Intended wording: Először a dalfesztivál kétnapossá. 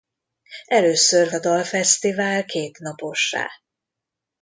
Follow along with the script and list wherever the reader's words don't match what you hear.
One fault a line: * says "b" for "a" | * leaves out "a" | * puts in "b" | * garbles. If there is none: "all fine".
all fine